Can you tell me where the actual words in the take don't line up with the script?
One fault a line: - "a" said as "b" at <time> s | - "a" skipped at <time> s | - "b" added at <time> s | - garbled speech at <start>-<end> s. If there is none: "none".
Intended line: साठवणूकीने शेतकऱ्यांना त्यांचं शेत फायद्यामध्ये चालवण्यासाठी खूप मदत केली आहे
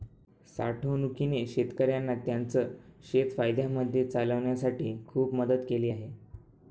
none